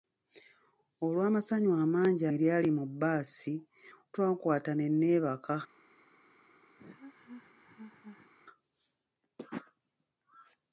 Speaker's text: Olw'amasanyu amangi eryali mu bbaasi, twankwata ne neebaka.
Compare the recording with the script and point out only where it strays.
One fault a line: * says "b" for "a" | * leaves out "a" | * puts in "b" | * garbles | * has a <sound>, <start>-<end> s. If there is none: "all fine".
* has a laugh, 6.8-8.3 s